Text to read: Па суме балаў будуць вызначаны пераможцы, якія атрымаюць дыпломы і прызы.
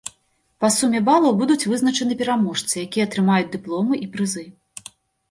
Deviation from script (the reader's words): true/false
false